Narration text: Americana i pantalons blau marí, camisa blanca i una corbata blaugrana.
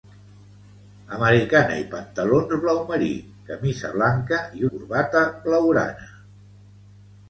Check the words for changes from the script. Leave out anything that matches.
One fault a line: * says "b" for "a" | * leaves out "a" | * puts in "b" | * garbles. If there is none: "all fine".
* leaves out "una"